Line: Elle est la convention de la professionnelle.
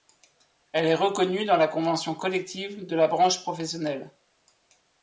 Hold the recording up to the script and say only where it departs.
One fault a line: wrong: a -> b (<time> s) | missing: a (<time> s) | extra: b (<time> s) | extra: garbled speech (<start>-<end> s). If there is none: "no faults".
extra: reconnue dans (0.9 s)
extra: collective (2.1 s)
extra: branche (3.1 s)